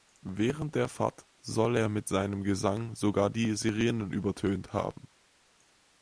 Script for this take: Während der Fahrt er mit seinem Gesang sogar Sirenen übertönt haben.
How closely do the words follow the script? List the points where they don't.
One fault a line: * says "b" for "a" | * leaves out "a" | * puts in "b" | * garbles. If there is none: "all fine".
* puts in "soll"
* puts in "die"